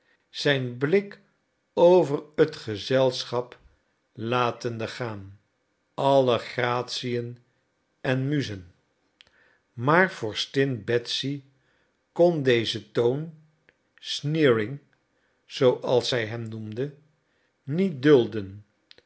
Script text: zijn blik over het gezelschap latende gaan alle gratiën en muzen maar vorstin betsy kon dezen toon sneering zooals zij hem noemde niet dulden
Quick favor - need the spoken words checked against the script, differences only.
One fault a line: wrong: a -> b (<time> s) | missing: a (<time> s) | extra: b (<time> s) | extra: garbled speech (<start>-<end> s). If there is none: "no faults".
no faults